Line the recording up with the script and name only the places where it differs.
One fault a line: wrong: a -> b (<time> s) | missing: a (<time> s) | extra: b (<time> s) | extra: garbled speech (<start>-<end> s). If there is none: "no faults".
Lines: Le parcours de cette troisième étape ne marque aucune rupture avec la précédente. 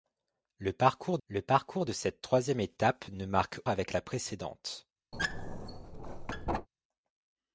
extra: le parcours (1.3 s)
missing: aucune rupture (3.6 s)